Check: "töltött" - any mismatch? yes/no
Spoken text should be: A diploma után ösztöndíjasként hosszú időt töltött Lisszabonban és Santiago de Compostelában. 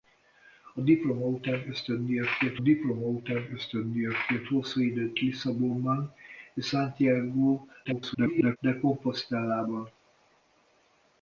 yes